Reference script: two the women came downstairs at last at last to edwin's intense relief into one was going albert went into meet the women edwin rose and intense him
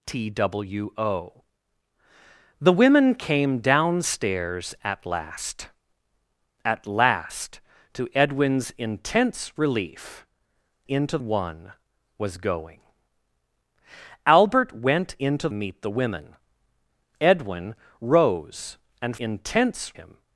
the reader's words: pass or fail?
pass